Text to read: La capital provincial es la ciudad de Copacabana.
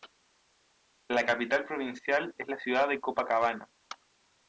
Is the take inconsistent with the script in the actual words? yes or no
no